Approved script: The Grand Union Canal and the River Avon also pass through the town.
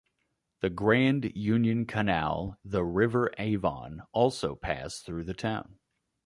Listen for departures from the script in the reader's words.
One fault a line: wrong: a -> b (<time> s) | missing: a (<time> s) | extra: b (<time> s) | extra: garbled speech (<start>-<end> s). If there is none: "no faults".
missing: and (2.6 s)